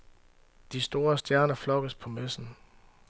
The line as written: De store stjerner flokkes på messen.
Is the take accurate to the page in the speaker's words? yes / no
yes